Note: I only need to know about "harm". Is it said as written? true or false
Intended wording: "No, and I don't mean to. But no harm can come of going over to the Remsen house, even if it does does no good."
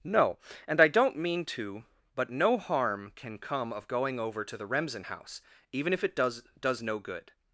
true